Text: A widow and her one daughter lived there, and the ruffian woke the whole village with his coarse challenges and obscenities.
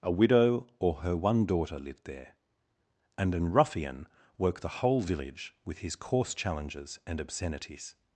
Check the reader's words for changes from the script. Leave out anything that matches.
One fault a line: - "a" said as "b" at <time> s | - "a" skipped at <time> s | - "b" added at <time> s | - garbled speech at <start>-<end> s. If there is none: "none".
- "and" said as "or" at 0.8 s
- "the" said as "an" at 3.4 s